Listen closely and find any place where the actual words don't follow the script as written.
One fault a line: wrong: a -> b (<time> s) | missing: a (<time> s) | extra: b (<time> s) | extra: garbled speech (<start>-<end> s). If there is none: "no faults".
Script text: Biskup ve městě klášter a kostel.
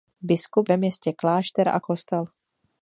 no faults